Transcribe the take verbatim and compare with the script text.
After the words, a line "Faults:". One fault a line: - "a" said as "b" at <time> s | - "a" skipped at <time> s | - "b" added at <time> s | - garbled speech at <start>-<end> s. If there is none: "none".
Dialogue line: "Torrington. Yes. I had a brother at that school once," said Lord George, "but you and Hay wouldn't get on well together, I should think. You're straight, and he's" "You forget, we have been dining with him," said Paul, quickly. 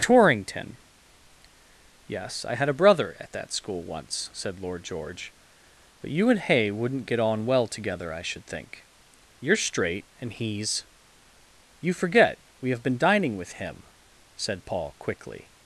"Torrington. Yes. I had a brother at that school once," said Lord George, "but you and Hay wouldn't get on well together, I should think. You're straight, and he's" "You forget, we have been dining with him," said Paul, quickly.
Faults:
none